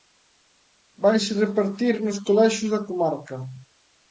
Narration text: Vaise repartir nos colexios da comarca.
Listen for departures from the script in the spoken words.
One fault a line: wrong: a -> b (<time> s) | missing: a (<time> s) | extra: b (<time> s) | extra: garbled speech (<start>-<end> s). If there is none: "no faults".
no faults